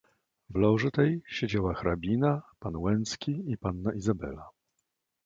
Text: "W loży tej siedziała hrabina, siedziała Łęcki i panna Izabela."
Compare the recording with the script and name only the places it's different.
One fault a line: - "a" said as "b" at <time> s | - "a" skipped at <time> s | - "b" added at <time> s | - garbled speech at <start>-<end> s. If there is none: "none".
- "siedziała" said as "pan" at 2.6 s